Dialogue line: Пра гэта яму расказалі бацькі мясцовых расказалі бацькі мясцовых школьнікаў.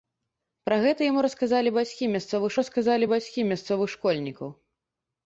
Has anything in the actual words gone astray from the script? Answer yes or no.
no